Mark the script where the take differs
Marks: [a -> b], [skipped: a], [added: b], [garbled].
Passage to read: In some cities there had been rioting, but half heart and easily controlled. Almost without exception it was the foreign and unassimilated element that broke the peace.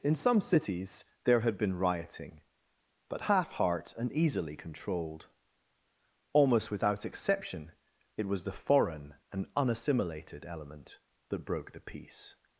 In some cities there had been rioting, but half heart and easily controlled. Almost without exception it was the foreign and unassimilated element that broke the peace.